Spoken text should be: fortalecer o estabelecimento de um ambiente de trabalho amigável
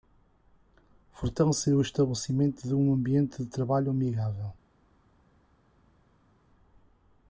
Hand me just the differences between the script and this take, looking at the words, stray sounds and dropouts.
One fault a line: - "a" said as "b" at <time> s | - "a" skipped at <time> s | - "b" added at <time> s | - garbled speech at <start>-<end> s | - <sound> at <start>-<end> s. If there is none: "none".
none